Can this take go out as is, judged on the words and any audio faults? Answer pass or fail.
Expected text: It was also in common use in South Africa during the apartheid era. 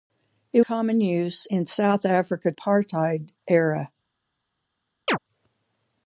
fail